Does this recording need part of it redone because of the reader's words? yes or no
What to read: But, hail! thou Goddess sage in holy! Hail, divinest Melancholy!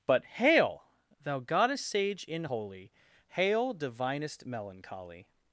no